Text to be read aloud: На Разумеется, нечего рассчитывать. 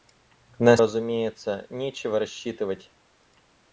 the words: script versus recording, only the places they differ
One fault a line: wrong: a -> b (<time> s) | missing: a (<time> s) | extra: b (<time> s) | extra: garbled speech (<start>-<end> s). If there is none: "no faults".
no faults